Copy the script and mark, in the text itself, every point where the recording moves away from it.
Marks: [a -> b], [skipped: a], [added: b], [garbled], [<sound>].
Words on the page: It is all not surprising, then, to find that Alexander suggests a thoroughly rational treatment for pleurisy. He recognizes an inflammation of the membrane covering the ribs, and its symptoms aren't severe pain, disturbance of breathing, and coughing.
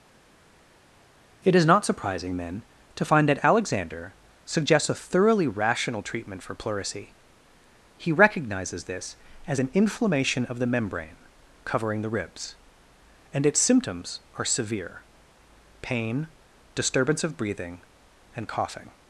It is [skipped: all] not surprising, then, to find that Alexander suggests a thoroughly rational treatment for pleurisy. He recognizes [added: this as] an inflammation of the membrane covering the ribs, and its symptoms [aren't -> are] severe pain, disturbance of breathing, and coughing.